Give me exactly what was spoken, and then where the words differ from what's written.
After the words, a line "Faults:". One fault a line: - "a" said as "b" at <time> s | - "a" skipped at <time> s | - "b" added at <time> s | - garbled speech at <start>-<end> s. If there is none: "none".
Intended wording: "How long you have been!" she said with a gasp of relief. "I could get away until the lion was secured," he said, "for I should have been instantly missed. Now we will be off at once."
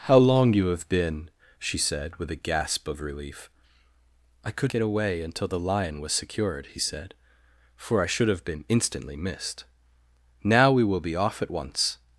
"How long you have been!" she said with a gasp of relief. "I could get away until the lion was secured," he said, "for I should have been instantly missed. Now we will be off at once."
Faults:
none